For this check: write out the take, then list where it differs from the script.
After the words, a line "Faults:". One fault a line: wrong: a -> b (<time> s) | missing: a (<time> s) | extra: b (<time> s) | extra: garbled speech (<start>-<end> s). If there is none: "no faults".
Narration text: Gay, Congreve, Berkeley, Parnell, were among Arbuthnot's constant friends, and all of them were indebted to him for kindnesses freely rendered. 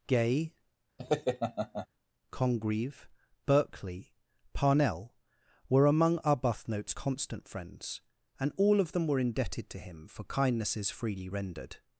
Gay, Congreve, Berkeley, Parnell, were among Arbuthnot's constant friends, and all of them were indebted to him for kindnesses freely rendered.
Faults:
no faults